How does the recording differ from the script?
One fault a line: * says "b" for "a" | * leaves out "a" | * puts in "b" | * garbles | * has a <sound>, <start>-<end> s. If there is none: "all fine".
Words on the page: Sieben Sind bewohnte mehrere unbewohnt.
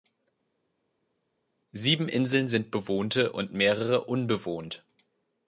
* puts in "Inseln"
* puts in "und"